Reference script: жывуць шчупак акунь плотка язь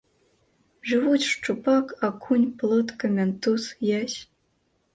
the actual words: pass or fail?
fail